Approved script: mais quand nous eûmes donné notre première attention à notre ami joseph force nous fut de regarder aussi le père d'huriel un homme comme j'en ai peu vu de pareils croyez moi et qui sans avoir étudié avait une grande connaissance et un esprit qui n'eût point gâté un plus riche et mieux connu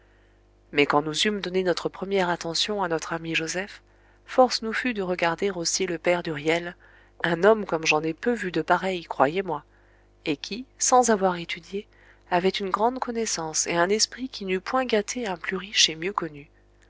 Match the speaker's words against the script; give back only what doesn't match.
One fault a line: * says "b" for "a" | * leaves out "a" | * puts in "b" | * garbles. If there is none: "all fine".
all fine